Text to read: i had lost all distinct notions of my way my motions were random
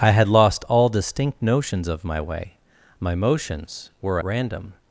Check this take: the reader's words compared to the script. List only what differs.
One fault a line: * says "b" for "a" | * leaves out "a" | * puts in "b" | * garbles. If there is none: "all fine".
all fine